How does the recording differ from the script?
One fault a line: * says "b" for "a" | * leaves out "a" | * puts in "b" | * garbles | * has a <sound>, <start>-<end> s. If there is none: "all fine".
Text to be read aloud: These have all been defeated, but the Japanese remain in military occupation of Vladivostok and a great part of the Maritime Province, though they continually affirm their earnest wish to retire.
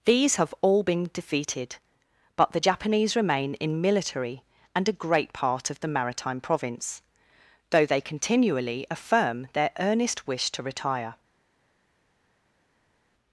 * leaves out "occupation of Vladivostok"